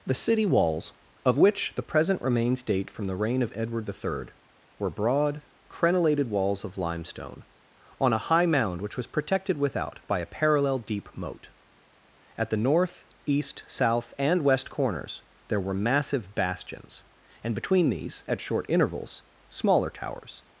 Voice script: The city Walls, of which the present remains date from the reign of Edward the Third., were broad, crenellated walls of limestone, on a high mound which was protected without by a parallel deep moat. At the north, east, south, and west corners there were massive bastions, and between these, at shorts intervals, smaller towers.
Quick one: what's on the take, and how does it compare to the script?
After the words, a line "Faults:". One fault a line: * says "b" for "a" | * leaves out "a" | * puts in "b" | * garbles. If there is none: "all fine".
The city Walls, of which the present remains date from the reign of Edward the Third., were broad, crenellated walls of limestone, on a high mound which was protected without by a parallel deep moat. At the north, east, south, and west corners there were massive bastions, and between these, at short intervals, smaller towers.
Faults:
* says "short" for "shorts"